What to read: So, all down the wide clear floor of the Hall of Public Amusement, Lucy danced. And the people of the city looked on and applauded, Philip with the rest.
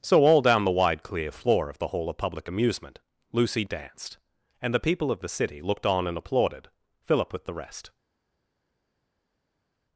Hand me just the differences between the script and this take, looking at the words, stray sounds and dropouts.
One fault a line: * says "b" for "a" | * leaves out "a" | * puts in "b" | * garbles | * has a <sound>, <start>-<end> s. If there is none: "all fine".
all fine